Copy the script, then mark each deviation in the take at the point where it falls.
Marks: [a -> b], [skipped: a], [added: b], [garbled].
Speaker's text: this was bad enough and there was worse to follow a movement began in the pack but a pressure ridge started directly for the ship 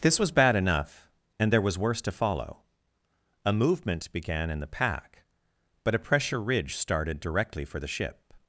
this was bad enough and there was worse to follow a movement began in the pack but a pressure ridge started directly for the ship